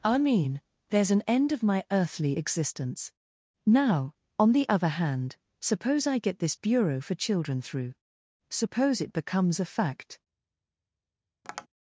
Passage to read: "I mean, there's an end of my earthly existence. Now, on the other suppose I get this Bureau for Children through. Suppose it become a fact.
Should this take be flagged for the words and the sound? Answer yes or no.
yes